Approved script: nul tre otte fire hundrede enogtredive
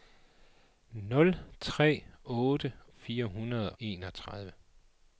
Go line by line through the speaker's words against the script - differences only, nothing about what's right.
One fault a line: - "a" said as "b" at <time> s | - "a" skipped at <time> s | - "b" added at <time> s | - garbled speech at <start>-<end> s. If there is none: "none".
none